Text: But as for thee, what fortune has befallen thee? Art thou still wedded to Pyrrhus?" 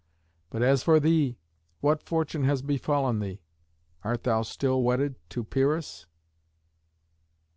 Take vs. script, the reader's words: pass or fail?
pass